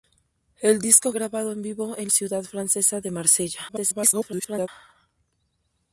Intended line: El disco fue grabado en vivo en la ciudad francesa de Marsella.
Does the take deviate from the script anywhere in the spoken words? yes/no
yes